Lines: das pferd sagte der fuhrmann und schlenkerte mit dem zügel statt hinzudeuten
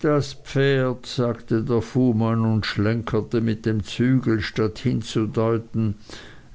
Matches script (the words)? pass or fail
pass